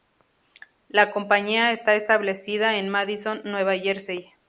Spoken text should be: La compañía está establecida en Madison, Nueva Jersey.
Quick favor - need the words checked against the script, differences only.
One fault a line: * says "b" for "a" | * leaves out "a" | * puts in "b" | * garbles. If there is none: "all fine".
all fine